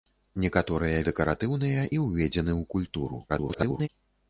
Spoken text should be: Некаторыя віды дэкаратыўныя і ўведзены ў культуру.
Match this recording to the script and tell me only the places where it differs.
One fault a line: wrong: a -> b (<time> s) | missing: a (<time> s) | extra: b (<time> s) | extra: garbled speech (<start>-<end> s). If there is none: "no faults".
missing: віды (1.0 s)
extra: garbled speech (3.3-3.9 s)